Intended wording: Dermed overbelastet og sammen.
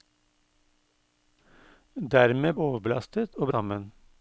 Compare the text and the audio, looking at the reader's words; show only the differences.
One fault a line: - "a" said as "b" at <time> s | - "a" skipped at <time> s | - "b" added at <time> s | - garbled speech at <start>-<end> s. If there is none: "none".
none